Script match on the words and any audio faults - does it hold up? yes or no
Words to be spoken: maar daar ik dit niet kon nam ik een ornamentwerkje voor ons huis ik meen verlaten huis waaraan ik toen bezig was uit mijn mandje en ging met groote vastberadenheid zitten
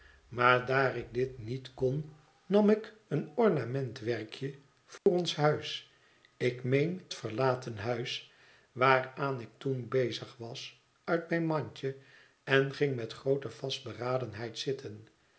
no